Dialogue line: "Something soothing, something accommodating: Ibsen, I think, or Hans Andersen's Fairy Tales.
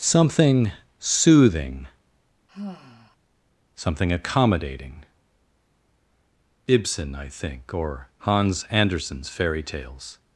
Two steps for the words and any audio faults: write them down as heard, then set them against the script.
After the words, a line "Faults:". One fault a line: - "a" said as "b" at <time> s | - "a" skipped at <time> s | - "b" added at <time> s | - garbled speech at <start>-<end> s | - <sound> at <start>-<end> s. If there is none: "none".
"Something soothing, something accommodating: Ibsen, I think, or Hans Andersen's Fairy Tales.
Faults:
- sigh at 2.5-3.2 s